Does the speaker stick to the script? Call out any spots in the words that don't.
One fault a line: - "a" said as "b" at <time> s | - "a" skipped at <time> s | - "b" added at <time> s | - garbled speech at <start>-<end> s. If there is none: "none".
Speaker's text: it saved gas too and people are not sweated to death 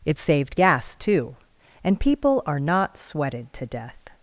none